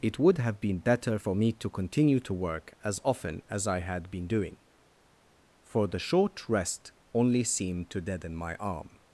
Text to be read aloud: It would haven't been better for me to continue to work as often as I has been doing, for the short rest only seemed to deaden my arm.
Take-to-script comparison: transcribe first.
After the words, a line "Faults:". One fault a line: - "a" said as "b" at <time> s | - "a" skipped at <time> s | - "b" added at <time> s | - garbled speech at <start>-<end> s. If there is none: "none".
It would have been better for me to continue to work as often as I had been doing, for the short rest only seemed to deaden my arm.
Faults:
- "haven't" said as "have" at 0.4 s
- "has" said as "had" at 3.8 s